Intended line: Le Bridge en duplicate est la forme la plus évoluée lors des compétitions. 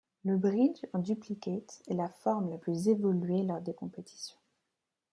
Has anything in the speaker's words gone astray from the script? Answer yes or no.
no